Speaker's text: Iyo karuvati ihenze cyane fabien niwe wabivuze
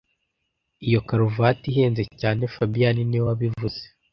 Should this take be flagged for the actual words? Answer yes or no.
no